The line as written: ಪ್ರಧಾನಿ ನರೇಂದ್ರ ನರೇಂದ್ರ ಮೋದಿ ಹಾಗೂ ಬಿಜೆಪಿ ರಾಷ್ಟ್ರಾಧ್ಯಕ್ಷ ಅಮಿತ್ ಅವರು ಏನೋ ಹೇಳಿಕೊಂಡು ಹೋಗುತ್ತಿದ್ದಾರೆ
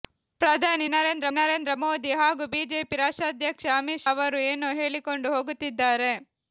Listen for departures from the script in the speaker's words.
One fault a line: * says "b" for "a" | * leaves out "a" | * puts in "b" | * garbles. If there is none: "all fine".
all fine